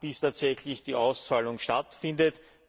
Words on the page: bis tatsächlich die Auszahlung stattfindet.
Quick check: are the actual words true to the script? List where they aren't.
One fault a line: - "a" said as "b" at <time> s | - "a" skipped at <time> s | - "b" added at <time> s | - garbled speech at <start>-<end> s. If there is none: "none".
none